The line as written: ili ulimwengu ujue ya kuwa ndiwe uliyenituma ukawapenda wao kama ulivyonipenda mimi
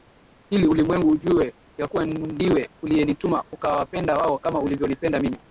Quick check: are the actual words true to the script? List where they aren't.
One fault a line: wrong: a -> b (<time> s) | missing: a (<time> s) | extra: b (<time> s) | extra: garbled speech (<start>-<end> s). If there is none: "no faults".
no faults